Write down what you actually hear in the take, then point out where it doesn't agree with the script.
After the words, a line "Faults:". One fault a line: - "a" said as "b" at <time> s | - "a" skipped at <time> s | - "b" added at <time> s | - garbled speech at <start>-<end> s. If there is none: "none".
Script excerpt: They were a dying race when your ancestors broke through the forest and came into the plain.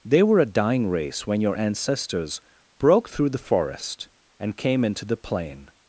They were a dying race when your ancestors broke through the forest and came into the plain.
Faults:
none